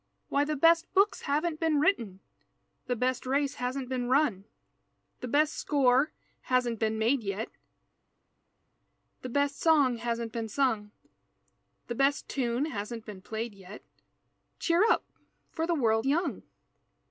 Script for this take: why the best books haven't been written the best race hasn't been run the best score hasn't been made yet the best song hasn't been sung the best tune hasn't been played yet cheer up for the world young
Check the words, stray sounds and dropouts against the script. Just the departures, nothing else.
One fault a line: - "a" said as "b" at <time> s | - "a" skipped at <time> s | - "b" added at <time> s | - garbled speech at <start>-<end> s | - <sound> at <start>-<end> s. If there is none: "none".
none